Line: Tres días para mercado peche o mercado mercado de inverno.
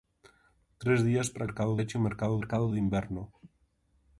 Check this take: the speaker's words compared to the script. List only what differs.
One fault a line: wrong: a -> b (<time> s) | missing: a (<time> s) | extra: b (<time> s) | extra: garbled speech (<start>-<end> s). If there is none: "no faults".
no faults